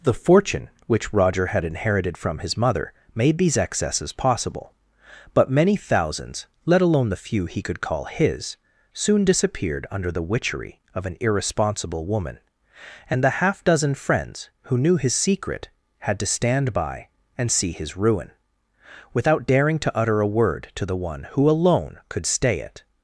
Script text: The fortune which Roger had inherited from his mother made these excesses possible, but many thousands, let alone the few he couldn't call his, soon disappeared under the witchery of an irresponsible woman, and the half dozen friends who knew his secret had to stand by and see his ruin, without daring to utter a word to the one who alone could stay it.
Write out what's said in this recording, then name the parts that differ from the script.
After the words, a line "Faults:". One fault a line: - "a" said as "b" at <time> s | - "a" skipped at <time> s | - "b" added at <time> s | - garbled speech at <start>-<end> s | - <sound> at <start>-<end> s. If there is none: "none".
The fortune which Roger had inherited from his mother made these excesses possible, but many thousands, let alone the few he could call his, soon disappeared under the witchery of an irresponsible woman, and the half dozen friends who knew his secret had to stand by and see his ruin, without daring to utter a word to the one who alone could stay it.
Faults:
- "couldn't" said as "could" at 7.6 s